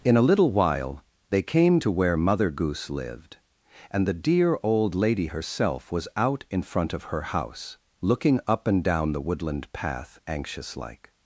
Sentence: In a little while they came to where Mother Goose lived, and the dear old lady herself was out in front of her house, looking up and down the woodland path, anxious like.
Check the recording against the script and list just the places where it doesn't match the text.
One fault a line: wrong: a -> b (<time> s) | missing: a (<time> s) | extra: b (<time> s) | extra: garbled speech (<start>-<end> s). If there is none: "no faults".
no faults